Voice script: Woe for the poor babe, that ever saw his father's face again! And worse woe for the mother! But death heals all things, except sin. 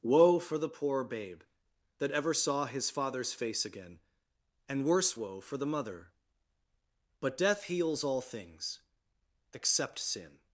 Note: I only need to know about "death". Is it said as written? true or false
true